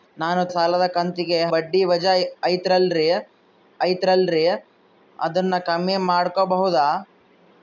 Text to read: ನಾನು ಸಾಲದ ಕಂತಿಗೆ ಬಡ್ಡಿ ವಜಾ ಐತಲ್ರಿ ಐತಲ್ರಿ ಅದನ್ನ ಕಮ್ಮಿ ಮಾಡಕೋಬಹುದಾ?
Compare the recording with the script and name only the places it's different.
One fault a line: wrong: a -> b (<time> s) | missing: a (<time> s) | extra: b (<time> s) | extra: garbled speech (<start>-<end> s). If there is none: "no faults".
no faults